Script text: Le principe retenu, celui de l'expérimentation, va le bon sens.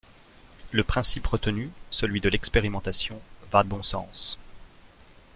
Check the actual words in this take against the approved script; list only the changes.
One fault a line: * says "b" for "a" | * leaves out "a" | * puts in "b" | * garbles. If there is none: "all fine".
all fine